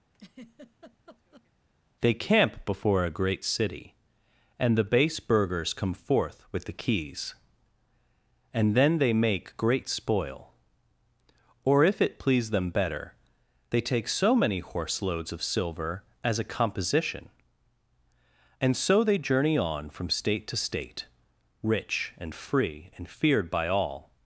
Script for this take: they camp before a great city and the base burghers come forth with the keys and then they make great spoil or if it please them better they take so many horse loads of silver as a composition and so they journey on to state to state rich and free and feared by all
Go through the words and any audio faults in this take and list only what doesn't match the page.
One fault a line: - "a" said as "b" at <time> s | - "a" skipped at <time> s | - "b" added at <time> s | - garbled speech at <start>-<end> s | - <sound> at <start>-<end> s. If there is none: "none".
- laugh at 0.1-1.5 s
- "to" said as "from" at 19.9 s